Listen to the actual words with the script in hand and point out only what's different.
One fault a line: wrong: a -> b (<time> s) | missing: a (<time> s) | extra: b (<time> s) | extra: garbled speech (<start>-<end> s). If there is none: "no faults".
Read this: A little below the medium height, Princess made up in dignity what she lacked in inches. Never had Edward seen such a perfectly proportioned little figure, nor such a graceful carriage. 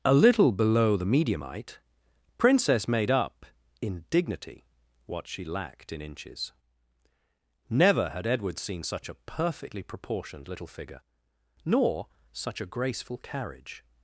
no faults